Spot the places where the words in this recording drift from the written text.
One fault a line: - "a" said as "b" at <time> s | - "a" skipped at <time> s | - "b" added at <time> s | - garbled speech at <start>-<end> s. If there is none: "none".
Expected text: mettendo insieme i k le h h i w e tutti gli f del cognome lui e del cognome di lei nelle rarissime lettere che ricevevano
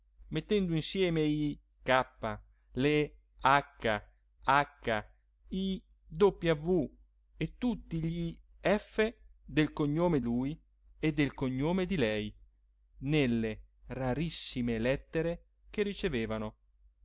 none